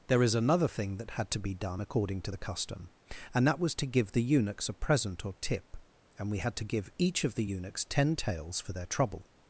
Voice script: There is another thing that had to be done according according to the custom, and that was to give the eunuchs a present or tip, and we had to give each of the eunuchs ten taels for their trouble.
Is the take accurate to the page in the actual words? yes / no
no